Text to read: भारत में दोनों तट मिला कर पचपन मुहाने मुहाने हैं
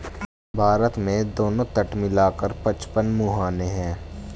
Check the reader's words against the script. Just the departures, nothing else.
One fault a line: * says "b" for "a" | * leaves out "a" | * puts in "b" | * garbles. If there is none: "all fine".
* leaves out "मुहाने"